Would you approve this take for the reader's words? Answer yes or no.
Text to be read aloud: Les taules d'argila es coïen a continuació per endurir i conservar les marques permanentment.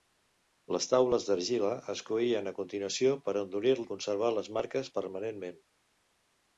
yes